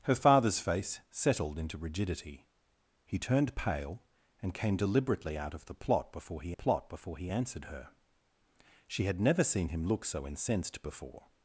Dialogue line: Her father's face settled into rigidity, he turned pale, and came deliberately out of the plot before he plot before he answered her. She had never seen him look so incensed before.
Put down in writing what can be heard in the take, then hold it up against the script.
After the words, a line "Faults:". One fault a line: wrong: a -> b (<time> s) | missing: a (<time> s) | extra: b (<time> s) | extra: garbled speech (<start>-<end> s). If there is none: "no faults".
Her father's face settled into rigidity, he turned pale, and came deliberately out of the plot before he plot before he answered her. She had never seen him look so incensed before.
Faults:
no faults